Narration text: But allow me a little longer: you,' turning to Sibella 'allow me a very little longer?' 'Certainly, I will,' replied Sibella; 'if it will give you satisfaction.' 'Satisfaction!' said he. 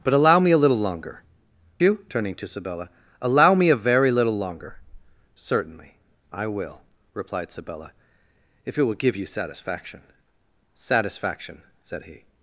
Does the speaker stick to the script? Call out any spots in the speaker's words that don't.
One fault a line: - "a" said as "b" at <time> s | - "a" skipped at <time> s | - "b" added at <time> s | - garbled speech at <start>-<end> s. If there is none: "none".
none